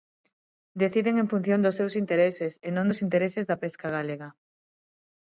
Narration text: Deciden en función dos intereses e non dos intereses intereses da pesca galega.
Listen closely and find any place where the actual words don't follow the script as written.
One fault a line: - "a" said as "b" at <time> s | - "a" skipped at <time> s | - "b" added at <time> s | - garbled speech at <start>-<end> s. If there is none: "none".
- "seus" added at 1.8 s
- "intereses" skipped at 3.4 s